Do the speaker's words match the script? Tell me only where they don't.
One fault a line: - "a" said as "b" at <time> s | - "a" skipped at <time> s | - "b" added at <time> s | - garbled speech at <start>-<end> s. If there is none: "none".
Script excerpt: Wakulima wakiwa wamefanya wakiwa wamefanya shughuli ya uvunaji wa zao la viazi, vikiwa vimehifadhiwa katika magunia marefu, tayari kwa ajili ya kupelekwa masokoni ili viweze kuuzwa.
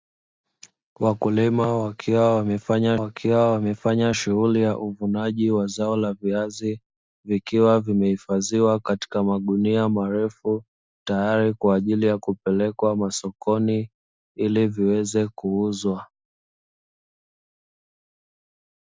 none